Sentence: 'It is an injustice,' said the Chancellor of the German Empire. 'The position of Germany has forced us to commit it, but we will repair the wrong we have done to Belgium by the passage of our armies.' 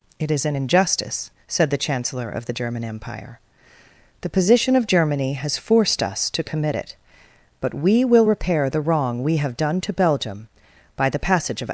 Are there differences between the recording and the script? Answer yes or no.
yes